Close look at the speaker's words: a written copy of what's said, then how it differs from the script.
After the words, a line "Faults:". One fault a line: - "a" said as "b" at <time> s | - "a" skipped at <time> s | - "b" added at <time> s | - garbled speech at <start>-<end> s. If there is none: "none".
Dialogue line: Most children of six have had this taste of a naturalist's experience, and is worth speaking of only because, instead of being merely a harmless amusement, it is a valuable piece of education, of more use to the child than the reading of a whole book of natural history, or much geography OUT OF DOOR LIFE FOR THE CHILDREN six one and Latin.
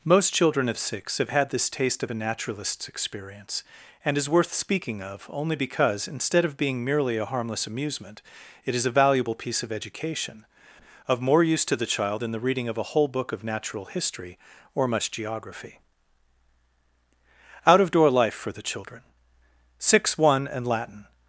Most children of six have had this taste of a naturalist's experience, and is worth speaking of only because, instead of being merely a harmless amusement, it is a valuable piece of education, of more use to the child than the reading of a whole book of natural history, or much geography OUT OF DOOR LIFE FOR THE CHILDREN six one and Latin.
Faults:
none